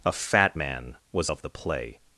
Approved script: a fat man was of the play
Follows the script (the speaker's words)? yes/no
yes